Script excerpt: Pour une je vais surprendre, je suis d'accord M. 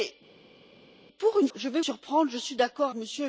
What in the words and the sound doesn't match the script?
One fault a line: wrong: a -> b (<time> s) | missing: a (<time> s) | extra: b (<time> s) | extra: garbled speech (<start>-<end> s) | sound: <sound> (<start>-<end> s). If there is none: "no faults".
no faults